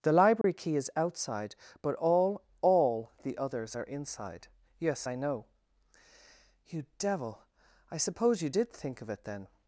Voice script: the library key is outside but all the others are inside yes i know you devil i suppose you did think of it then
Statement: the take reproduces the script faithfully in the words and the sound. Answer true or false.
false